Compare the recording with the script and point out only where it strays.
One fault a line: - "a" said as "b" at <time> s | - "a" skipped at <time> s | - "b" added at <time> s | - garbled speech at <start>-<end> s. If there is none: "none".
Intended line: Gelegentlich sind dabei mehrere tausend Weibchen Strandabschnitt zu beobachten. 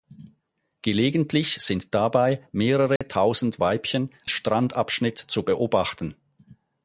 none